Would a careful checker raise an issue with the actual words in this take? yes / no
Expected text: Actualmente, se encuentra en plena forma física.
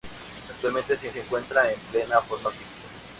yes